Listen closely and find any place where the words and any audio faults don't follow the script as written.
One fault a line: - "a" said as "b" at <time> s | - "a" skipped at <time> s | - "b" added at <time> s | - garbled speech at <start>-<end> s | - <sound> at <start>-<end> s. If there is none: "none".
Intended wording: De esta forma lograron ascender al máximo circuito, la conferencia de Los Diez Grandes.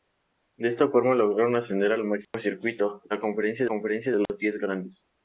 - dropout at 2.2-2.3 s
- "conferencia" added at 3.7 s
- dropout at 4.3-4.3 s